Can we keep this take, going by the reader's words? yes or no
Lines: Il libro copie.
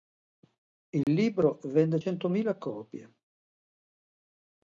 no